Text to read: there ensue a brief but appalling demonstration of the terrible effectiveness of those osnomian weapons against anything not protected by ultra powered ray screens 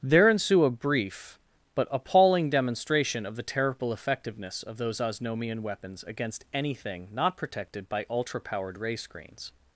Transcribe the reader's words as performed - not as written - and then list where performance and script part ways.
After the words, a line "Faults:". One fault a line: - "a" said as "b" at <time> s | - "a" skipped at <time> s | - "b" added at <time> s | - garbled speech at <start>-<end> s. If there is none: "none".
there ensue a brief but appalling demonstration of the terrible effectiveness of those osnomian weapons against anything not protected by ultra powered ray screens
Faults:
none